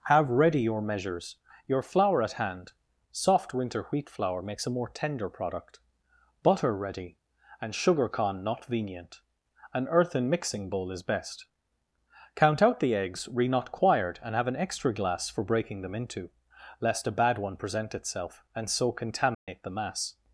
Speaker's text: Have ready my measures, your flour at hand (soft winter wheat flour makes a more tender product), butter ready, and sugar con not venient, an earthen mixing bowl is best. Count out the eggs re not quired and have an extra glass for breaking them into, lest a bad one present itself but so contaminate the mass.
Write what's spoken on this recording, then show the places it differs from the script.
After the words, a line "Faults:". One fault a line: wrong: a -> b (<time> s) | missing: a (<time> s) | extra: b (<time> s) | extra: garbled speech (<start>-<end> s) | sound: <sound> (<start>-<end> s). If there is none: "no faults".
Have ready your measures, your flour at hand (soft winter wheat flour makes a more tender product), butter ready, and sugar con not venient, an earthen mixing bowl is best. Count out the eggs re not quired and have an extra glass for breaking them into, lest a bad one present itself and so contaminate the mass.
Faults:
wrong: my -> your (0.6 s)
wrong: but -> and (18.6 s)
sound: dropout (19.3-19.5 s)